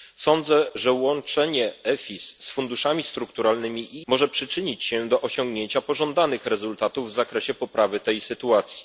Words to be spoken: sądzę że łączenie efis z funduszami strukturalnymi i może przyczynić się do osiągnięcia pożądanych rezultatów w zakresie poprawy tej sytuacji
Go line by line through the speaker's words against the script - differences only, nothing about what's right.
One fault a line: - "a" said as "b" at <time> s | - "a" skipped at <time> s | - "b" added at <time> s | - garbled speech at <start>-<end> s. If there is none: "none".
none